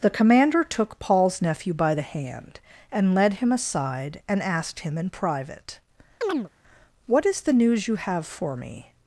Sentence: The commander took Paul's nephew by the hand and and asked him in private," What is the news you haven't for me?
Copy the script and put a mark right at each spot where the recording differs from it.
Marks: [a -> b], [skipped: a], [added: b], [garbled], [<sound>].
The commander took Paul's nephew by the hand and [added: led him aside] and asked him in private," [chirp] What is the news you [haven't -> have] for me?